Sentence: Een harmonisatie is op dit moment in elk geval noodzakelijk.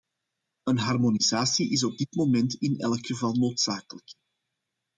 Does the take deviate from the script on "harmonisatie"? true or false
false